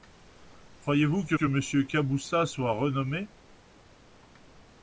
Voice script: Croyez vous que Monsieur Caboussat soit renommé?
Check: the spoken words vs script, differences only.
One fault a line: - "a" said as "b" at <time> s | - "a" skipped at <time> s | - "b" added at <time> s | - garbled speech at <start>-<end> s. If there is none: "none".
- "que" added at 1.3 s